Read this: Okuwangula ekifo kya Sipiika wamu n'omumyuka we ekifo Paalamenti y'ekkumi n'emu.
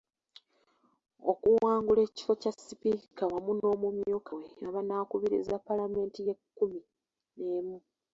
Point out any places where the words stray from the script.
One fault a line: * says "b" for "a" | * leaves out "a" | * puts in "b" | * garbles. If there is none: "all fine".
* says "abanaakubiriza" for "ekifo"